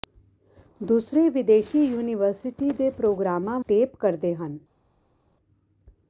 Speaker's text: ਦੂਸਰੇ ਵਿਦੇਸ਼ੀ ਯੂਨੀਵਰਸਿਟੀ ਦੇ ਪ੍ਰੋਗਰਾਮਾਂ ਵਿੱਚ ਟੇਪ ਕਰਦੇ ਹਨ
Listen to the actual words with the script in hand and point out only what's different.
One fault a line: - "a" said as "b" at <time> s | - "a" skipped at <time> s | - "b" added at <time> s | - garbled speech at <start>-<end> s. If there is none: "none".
- "ਵਿੱਚ" skipped at 3.6 s